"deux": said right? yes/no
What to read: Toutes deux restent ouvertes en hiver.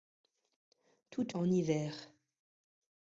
no